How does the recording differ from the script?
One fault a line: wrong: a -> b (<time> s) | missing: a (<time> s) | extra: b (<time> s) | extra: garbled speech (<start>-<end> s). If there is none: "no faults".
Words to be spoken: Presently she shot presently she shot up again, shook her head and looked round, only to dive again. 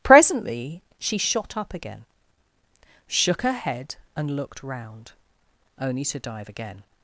missing: presently she shot (1.6 s)